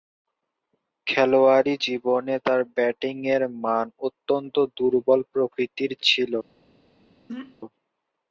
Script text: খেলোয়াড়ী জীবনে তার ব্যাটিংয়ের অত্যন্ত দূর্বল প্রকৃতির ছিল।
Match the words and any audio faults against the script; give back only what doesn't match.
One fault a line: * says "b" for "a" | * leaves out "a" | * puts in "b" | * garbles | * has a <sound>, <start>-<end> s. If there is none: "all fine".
* puts in "মান"
* has a throat clearing, 7.3-7.5 s